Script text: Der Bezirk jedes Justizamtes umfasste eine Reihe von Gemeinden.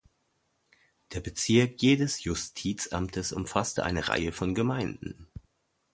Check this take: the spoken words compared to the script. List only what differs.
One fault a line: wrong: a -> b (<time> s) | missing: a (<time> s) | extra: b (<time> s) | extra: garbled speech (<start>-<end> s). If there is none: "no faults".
no faults